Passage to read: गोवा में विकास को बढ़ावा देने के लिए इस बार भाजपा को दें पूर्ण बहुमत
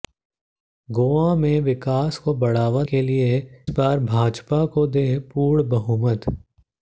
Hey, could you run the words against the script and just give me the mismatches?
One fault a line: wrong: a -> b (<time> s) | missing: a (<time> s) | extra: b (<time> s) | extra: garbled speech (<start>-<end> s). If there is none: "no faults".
missing: देने (2.8 s)
missing: इस (3.4 s)